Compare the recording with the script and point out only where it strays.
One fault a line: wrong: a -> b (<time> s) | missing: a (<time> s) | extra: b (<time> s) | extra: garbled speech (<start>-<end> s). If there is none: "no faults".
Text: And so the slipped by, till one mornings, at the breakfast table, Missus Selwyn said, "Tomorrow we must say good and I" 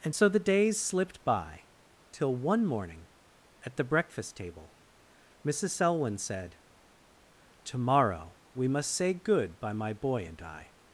extra: days (0.4 s)
wrong: mornings -> morning (2.6 s)
extra: by my boy (9.6 s)